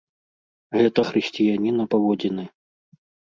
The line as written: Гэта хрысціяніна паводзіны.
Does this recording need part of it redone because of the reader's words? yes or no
no